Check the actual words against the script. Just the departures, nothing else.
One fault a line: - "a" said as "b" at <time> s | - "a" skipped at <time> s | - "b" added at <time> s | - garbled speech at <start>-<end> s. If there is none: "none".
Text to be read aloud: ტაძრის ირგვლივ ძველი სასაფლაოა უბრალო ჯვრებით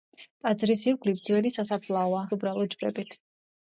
none